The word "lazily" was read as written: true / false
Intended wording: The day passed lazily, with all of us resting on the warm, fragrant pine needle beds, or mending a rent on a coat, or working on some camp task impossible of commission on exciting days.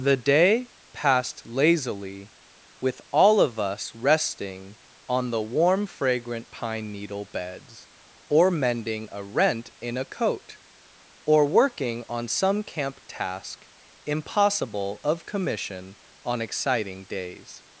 true